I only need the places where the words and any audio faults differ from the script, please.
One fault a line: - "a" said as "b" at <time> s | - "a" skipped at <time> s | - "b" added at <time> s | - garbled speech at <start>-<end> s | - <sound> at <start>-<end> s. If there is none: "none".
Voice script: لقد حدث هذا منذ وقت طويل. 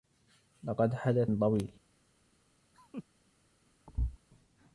- "هذا منذ وقت" skipped at 1.3 s
- laugh at 2.7-3.0 s
- thud at 3.9-4.2 s